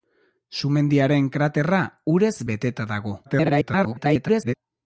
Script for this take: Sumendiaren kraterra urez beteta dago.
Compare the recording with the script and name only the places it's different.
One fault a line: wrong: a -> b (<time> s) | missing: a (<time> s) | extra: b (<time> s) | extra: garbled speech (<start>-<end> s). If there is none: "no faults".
extra: garbled speech (3.2-4.5 s)